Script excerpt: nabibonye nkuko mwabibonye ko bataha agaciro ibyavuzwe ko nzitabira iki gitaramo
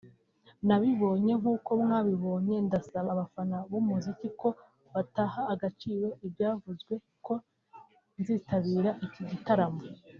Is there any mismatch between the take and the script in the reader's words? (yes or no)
yes